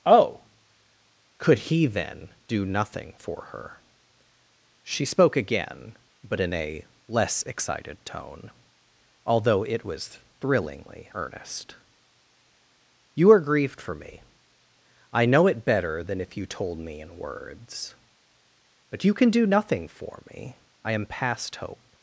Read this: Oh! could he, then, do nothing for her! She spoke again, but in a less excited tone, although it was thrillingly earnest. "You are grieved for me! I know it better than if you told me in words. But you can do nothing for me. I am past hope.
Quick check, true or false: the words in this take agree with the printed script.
true